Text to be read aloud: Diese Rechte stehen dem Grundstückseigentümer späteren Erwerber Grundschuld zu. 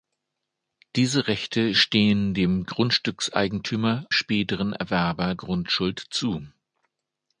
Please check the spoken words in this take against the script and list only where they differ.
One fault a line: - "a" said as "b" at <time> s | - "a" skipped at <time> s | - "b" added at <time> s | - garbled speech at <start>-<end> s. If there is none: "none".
none